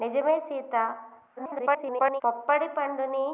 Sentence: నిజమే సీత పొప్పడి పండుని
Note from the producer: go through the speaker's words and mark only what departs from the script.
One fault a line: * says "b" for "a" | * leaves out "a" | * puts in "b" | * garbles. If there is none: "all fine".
* garbles